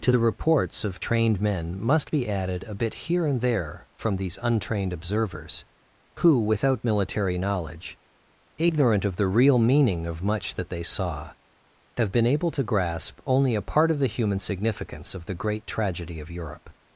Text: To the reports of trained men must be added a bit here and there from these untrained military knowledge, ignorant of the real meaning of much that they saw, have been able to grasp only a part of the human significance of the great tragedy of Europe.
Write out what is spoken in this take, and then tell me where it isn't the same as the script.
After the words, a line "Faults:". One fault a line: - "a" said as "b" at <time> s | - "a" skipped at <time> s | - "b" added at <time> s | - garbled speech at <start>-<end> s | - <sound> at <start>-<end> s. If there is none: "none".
To the reports of trained men must be added a bit here and there from these untrained observers, who without military knowledge, ignorant of the real meaning of much that they saw, have been able to grasp only a part of the human significance of the great tragedy of Europe.
Faults:
- "observers who without" added at 4.9 s